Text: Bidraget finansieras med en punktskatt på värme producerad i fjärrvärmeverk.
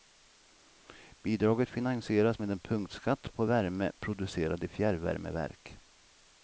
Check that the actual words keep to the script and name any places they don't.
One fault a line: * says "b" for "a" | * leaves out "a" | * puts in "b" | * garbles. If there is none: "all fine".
all fine